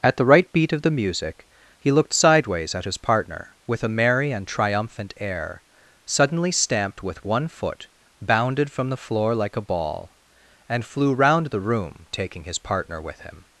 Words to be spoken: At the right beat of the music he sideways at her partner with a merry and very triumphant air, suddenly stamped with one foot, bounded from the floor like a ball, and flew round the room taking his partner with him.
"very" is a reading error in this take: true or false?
true